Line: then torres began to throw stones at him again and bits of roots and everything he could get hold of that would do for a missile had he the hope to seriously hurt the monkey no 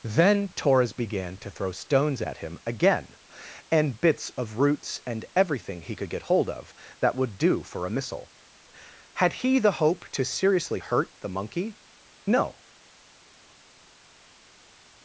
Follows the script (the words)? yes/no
yes